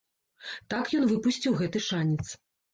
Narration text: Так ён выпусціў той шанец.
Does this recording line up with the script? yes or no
no